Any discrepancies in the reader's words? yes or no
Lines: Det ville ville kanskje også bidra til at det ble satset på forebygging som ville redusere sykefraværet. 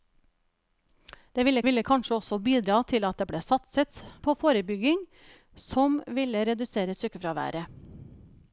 no